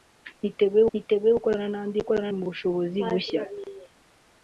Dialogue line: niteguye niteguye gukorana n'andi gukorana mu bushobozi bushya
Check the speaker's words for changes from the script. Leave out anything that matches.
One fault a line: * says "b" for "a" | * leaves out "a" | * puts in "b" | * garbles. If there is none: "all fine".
all fine